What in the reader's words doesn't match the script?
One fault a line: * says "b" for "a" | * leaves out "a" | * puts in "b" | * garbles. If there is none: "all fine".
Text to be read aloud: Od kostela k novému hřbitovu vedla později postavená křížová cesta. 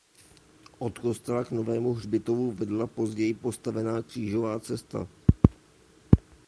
all fine